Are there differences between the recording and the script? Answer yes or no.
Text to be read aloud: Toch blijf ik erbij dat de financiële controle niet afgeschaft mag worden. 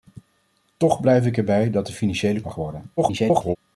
yes